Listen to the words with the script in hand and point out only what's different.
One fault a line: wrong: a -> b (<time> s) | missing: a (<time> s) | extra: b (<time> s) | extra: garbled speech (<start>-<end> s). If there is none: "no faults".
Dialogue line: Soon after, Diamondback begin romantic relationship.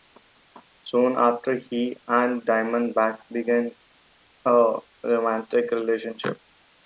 extra: he and (1.6 s)
extra: a (4.5 s)